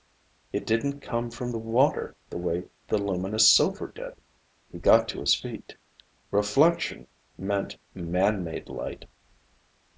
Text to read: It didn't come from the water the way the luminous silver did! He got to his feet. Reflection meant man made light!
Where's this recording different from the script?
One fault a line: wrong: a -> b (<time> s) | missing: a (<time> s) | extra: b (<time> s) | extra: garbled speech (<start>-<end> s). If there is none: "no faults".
no faults